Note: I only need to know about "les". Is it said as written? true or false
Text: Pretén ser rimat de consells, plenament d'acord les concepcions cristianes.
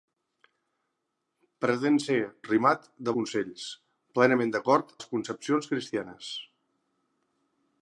true